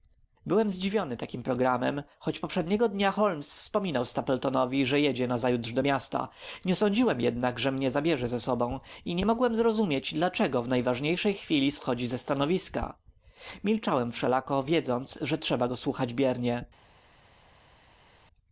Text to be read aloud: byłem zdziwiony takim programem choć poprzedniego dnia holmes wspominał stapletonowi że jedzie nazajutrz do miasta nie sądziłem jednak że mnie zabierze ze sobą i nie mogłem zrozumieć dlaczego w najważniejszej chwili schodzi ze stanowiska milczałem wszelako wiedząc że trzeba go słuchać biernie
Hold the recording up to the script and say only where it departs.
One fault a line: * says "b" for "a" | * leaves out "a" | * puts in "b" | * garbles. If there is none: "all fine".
all fine